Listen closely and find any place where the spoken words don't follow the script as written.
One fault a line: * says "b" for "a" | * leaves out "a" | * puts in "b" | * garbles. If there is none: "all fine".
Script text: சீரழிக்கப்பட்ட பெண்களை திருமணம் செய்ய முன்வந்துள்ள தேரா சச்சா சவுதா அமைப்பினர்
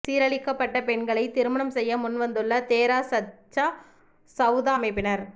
all fine